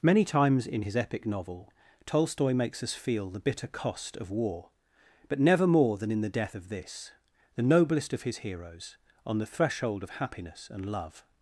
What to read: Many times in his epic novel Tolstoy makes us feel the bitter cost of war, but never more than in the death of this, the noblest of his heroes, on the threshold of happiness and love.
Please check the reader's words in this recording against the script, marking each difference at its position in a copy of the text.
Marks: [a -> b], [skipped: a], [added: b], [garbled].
Many times in his epic novel Tolstoy makes us feel the bitter cost of war, but never more than in the death of this, the noblest of his heroes, on the threshold of happiness and love.